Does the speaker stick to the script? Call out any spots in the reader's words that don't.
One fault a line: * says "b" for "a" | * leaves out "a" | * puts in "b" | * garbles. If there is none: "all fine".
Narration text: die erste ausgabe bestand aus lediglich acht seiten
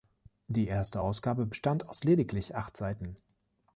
all fine